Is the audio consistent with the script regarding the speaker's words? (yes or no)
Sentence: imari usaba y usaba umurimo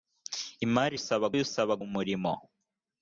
yes